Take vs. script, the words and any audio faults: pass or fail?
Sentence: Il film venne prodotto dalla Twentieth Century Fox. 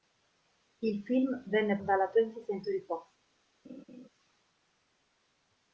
fail